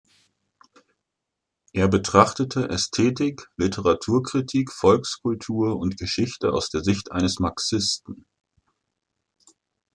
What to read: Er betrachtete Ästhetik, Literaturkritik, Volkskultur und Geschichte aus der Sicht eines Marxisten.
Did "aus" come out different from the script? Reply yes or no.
no